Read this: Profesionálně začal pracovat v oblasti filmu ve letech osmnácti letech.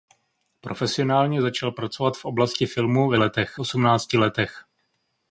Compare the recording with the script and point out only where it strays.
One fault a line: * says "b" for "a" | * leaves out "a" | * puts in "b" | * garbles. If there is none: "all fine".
all fine